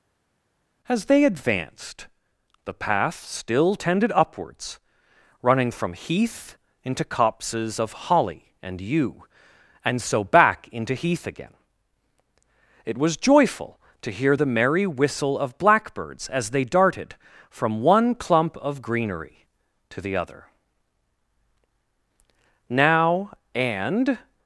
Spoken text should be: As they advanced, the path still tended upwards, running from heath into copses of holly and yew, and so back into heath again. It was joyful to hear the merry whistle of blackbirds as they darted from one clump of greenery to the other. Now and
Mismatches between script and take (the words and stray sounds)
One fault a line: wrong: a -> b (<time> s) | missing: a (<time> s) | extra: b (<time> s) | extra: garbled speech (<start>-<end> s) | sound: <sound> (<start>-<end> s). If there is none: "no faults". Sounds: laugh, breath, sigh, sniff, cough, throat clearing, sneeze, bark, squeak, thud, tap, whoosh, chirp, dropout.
no faults